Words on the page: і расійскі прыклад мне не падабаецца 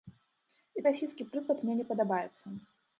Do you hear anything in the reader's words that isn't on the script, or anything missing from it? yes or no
no